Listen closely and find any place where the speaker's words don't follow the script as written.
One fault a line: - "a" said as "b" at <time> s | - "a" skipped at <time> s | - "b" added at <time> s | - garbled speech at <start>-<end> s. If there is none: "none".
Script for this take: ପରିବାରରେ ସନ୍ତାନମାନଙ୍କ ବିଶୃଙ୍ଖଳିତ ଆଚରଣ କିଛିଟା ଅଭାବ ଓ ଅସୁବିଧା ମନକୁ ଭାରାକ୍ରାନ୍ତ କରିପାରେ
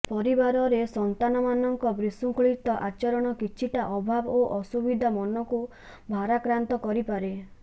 none